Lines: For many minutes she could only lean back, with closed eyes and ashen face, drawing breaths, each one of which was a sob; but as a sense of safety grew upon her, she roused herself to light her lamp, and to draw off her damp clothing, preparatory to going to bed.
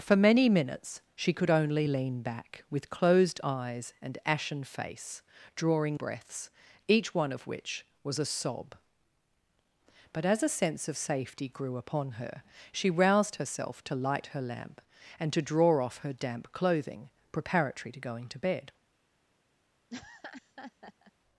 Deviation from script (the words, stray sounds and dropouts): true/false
true